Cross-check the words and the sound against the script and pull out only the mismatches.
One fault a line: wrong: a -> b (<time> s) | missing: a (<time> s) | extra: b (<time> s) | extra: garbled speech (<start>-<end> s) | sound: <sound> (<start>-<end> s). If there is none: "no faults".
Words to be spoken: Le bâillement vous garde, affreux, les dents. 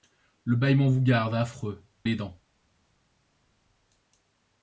no faults